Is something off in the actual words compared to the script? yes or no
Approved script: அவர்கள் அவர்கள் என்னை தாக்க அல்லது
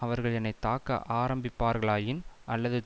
yes